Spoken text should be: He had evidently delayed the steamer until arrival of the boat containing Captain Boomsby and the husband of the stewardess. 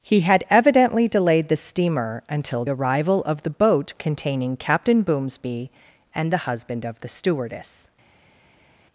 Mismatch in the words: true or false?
false